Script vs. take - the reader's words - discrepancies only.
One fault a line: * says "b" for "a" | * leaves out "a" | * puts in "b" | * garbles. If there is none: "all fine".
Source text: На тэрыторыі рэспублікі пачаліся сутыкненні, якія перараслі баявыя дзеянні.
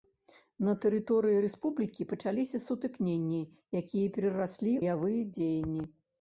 all fine